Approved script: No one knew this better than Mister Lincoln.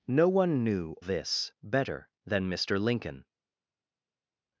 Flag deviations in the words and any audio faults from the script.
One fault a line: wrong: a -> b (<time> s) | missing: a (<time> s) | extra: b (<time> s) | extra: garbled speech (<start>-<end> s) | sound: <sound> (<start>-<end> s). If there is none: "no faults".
no faults